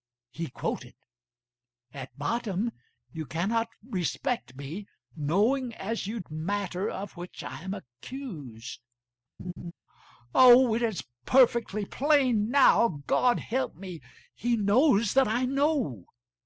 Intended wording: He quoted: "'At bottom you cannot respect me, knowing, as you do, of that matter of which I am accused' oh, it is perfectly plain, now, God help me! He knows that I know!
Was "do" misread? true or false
true